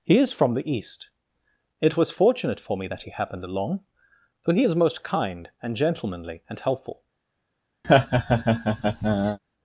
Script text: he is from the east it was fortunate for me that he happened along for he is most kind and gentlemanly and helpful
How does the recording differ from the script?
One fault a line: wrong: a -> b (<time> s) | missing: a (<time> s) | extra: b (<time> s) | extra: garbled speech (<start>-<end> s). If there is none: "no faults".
no faults